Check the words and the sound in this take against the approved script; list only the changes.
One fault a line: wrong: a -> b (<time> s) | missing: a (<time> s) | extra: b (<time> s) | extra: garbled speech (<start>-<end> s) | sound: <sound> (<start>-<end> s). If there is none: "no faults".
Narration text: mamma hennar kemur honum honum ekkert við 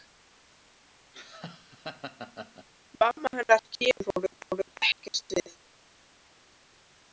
sound: laugh (1.1-2.7 s)